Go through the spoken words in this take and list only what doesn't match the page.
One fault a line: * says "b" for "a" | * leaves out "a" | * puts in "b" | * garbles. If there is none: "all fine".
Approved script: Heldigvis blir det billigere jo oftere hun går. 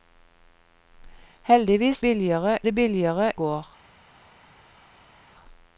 * says "billigere" for "blir"
* leaves out "jo oftere hun"